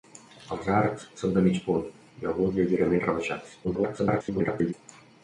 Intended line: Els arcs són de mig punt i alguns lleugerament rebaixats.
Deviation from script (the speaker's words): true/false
true